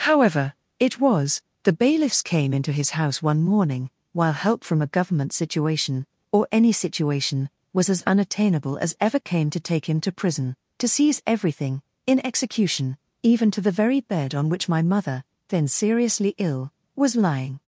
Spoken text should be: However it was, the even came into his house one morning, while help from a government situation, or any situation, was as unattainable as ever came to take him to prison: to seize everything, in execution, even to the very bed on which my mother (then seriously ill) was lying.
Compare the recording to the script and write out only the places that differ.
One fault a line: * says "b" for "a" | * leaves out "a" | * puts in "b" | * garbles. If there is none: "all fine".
* says "bailiffs" for "even"